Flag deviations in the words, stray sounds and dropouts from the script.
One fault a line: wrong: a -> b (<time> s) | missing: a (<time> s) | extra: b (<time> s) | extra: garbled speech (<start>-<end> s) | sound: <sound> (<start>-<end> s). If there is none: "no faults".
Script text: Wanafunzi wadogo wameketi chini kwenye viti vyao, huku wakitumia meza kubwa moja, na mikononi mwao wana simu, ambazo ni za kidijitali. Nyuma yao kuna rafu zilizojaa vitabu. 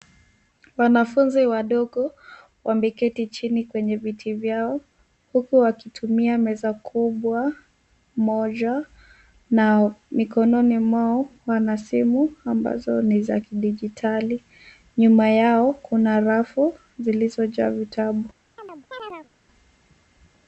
sound: chirp (18.6-19.3 s)